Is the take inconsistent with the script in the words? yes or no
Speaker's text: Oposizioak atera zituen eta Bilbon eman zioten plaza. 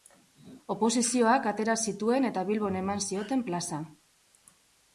no